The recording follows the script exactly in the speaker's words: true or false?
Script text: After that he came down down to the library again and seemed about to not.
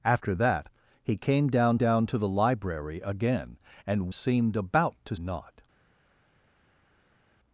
true